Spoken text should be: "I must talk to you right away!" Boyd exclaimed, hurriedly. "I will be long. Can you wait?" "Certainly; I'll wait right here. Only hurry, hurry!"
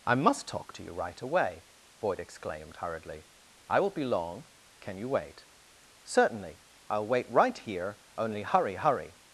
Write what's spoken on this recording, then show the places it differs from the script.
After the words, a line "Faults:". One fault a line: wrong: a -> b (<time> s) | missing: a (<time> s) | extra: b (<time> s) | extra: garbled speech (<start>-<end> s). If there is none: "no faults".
"I must talk to you right away!" Boyd exclaimed, hurriedly. "I will be long. Can you wait?" "Certainly; I'll wait right here. Only hurry, hurry!"
Faults:
no faults